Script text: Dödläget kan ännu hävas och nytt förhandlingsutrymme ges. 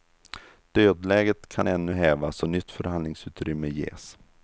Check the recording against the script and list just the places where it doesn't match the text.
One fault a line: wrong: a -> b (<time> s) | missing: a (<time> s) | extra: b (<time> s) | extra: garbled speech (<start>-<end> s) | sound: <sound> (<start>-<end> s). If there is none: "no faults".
no faults